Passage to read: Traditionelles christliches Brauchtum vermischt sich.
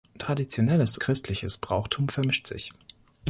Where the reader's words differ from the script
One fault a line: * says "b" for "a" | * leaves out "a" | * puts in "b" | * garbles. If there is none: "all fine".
all fine